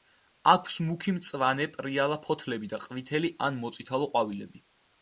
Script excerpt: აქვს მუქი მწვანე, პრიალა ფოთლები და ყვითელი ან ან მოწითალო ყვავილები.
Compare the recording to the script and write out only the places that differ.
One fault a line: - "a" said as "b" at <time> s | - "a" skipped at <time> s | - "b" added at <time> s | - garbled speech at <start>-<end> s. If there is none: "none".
- "ან" skipped at 3.6 s